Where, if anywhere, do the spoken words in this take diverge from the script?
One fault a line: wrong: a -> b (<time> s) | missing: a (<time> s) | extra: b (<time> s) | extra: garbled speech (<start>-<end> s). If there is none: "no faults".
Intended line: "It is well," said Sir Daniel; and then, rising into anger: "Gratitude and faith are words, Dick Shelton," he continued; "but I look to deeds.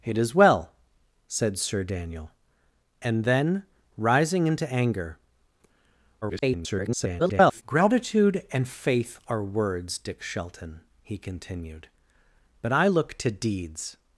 extra: garbled speech (6.2-7.6 s)